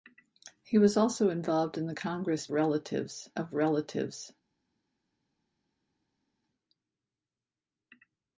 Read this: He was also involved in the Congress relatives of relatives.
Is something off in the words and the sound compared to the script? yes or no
no